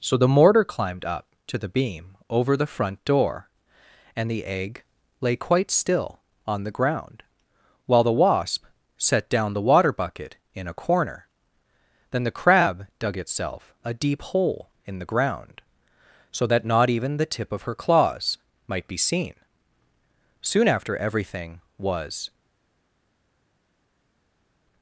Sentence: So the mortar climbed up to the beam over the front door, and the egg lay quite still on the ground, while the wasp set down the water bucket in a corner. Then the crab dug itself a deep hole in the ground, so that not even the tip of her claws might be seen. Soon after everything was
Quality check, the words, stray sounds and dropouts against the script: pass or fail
pass